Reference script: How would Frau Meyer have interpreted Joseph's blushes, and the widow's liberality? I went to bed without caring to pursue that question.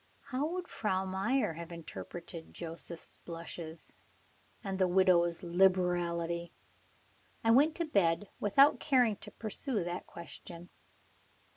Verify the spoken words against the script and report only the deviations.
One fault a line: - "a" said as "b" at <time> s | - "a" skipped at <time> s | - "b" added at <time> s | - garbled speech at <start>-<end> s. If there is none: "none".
none